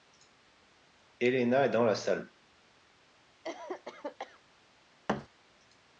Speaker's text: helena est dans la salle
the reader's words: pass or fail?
pass